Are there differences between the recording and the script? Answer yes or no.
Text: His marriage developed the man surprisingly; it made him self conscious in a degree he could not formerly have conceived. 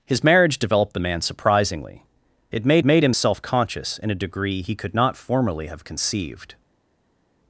yes